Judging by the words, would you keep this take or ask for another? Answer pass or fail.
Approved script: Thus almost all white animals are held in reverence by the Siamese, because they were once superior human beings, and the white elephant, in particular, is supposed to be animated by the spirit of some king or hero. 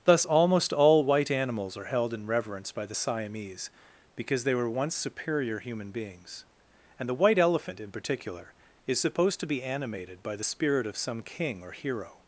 pass